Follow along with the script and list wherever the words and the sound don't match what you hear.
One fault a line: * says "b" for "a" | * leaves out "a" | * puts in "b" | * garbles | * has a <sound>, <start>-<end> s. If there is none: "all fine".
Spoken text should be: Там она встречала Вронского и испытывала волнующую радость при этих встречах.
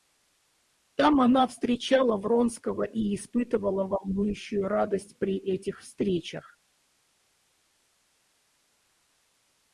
all fine